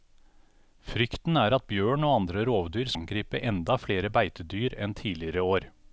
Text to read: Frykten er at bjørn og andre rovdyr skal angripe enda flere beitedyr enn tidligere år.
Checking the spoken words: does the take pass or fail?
fail